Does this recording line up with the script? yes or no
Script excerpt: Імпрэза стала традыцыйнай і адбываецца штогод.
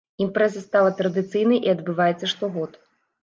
yes